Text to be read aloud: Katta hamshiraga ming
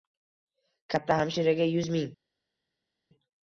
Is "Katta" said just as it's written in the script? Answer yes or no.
yes